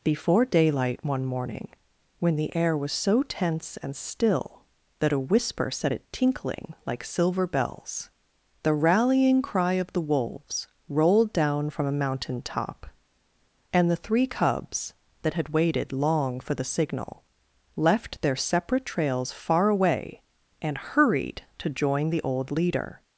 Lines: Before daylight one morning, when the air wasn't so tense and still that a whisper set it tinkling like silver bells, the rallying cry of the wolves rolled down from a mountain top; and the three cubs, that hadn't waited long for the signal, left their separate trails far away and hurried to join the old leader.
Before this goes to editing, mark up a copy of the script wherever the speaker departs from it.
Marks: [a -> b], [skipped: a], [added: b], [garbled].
Before daylight one morning, when the air [wasn't -> was] so tense and still that a whisper set it tinkling like silver bells, the rallying cry of the wolves rolled down from a mountain top; and the three cubs, that [hadn't -> had] waited long for the signal, left their separate trails far away and hurried to join the old leader.